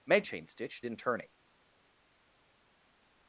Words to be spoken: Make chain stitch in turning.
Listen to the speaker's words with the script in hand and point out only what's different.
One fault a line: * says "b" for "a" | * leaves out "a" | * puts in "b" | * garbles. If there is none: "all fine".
all fine